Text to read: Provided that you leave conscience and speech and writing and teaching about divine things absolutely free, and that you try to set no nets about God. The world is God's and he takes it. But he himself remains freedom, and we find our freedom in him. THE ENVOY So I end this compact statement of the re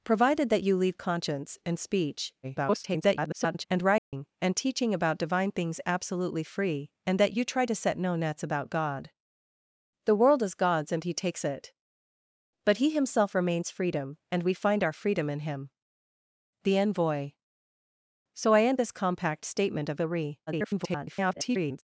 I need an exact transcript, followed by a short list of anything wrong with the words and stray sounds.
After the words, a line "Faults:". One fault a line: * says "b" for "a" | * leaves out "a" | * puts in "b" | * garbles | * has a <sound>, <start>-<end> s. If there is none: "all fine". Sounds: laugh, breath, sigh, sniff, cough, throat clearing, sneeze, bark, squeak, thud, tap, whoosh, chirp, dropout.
Provided that you leave conscience and speech [garbled] and writing and teaching about divine things absolutely free, and that you try to set no nets about God. The world is God's and he takes it. But he himself remains freedom, and we find our freedom in him. THE ENVOY So I end this compact statement of the re [garbled]
Faults:
* garbles
* has a dropout, 4.0-4.1 s
* garbles